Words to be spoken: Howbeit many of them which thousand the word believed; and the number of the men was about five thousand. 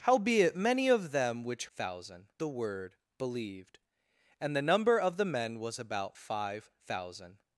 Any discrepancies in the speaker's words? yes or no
no